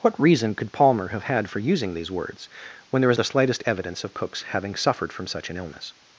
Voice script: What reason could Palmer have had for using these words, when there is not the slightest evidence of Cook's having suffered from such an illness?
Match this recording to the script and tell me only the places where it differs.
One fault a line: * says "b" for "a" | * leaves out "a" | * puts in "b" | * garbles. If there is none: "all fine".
* leaves out "not"